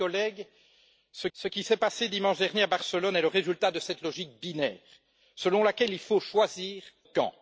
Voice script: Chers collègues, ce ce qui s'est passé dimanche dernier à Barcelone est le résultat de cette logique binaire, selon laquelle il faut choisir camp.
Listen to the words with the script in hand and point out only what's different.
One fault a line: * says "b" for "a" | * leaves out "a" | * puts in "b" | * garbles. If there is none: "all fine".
all fine